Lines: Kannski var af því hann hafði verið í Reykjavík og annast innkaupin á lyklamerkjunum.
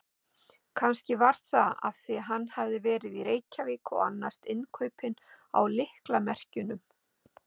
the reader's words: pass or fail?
fail